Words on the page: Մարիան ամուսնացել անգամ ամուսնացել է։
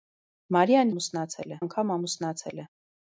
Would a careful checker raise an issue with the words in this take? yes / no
no